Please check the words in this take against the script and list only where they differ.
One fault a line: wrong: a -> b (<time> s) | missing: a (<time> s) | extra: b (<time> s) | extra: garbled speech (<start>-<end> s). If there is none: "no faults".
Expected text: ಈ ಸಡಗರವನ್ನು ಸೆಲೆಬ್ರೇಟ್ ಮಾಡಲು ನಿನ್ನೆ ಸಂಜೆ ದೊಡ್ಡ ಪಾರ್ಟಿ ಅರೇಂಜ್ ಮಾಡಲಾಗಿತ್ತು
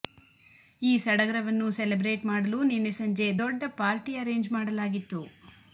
no faults